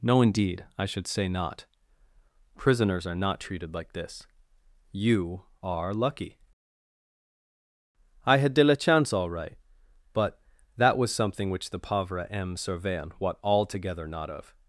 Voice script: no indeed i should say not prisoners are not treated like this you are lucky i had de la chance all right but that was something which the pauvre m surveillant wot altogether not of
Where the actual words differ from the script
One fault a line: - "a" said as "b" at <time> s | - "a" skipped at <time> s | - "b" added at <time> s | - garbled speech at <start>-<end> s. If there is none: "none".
none